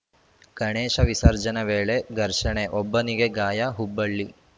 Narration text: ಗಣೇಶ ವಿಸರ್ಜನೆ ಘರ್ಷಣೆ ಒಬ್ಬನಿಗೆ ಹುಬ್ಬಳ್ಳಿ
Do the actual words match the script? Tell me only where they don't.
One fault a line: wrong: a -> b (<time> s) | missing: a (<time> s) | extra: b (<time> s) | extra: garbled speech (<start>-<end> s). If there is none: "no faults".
extra: ವೇಳೆ (1.6 s)
extra: ಗಾಯ (3.3 s)